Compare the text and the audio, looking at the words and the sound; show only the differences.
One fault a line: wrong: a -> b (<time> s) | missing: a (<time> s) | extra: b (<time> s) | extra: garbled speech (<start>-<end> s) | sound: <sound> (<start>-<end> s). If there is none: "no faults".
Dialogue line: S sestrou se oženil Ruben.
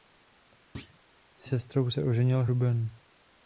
sound: thud (0.7-1.0 s)